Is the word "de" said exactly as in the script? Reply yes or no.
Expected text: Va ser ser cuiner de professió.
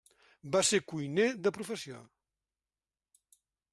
yes